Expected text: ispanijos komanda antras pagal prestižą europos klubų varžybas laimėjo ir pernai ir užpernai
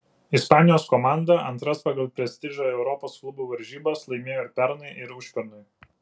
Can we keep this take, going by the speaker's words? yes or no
yes